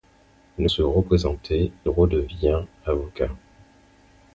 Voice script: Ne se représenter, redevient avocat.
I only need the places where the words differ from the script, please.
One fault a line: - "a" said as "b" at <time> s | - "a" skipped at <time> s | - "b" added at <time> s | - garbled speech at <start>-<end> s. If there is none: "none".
none